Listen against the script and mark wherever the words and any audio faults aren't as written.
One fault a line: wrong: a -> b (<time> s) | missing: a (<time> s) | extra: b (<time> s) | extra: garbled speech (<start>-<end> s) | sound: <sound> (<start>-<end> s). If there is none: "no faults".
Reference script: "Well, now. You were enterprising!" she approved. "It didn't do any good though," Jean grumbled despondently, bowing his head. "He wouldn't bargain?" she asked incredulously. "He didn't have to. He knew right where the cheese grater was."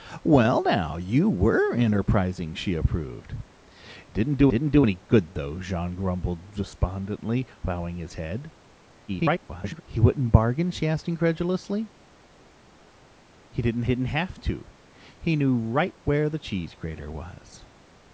extra: didn't do (4.5 s)
extra: garbled speech (9.1-9.8 s)
extra: didn't (13.9 s)